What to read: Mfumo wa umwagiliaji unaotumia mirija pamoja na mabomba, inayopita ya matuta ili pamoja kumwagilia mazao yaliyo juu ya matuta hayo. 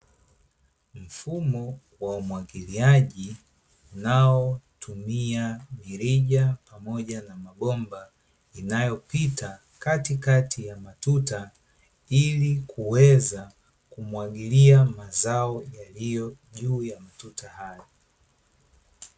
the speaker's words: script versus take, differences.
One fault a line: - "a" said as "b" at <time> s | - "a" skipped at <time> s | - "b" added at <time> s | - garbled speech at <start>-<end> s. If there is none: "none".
- "katikati" added at 9.8 s
- "pamoja" said as "kuweza" at 12.7 s